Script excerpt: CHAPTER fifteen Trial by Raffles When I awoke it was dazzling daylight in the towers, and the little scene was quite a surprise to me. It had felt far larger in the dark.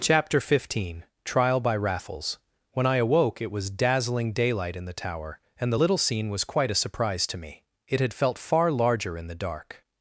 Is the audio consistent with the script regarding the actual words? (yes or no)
no